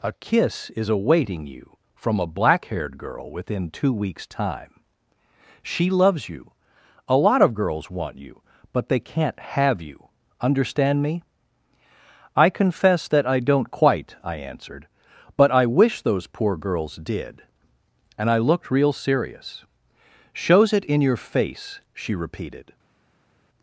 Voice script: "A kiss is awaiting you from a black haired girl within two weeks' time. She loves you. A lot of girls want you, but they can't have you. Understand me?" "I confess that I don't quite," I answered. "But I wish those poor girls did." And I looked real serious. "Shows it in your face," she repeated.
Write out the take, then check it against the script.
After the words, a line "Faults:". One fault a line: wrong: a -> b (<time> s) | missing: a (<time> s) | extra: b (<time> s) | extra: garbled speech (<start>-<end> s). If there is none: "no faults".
"A kiss is awaiting you from a black haired girl within two weeks' time. She loves you. A lot of girls want you, but they can't have you. Understand me?" "I confess that I don't quite," I answered. "But I wish those poor girls did." And I looked real serious. "Shows it in your face," she repeated.
Faults:
no faults